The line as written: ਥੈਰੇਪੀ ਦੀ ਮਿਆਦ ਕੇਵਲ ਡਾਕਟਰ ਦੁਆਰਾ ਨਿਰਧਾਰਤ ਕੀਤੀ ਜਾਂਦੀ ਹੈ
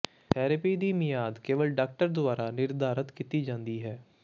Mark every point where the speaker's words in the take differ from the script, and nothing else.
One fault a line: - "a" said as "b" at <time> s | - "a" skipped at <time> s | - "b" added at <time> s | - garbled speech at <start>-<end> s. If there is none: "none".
none